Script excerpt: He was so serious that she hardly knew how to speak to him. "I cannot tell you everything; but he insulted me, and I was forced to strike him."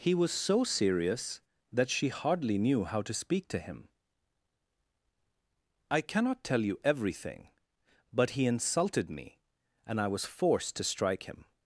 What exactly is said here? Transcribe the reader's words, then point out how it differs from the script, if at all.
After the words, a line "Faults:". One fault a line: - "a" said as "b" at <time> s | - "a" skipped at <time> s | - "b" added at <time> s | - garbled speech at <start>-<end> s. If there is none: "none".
He was so serious that she hardly knew how to speak to him. "I cannot tell you everything; but he insulted me, and I was forced to strike him."
Faults:
none